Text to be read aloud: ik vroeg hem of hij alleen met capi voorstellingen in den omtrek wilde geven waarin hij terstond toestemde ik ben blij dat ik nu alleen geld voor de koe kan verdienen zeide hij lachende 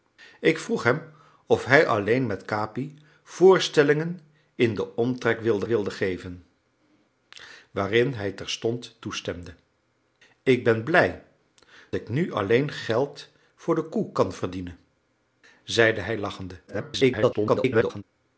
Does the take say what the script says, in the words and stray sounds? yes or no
no